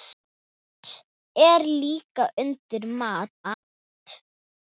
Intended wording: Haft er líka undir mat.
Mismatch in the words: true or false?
true